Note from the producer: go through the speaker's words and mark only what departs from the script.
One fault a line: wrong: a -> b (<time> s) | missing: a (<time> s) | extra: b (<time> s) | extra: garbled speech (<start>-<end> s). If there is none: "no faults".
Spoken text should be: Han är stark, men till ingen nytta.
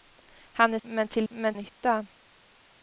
missing: stark (0.8 s)
wrong: ingen -> men (1.3 s)